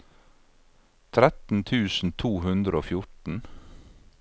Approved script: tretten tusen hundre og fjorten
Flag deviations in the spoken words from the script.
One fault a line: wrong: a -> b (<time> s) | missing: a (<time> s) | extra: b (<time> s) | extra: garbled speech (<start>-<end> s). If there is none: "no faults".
extra: to (2.2 s)